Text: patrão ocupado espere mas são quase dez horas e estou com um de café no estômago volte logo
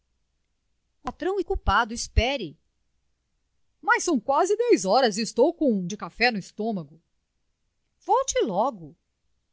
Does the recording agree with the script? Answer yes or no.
yes